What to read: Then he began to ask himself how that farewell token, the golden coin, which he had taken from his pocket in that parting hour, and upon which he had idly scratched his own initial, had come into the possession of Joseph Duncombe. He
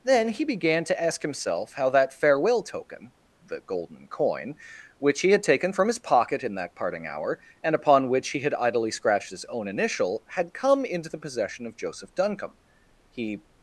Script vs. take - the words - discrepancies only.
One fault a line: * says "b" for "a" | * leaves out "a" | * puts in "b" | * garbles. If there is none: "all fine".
all fine